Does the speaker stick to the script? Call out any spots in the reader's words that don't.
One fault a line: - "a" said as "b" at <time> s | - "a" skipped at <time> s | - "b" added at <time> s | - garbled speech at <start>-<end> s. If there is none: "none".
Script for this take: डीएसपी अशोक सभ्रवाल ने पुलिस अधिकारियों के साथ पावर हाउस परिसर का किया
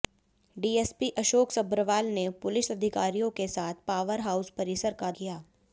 none